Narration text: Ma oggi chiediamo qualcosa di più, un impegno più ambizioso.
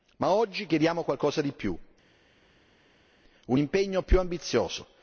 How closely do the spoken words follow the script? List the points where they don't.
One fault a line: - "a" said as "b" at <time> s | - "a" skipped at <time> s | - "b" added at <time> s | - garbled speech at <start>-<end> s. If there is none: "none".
none